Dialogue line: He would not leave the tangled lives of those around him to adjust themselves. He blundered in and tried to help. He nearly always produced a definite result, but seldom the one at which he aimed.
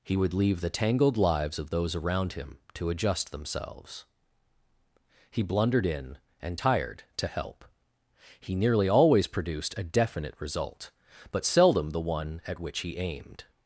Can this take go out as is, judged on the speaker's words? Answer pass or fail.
fail